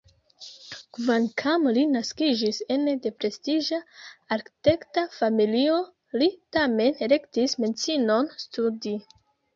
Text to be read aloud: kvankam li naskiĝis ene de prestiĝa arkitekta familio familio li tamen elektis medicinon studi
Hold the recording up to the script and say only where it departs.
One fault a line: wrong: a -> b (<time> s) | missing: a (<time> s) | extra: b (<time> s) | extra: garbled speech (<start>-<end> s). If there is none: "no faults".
missing: familio (5.8 s)